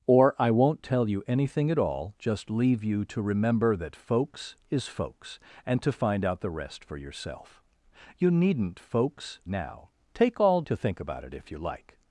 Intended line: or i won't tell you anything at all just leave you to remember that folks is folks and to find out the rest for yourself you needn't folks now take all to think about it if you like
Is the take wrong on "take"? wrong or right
right